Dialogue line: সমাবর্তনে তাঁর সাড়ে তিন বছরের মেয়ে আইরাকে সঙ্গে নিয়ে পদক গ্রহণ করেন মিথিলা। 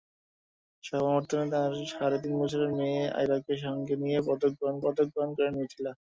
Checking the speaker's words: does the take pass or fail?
fail